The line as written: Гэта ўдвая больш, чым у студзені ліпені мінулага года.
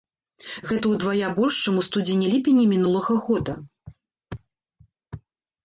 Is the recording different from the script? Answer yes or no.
no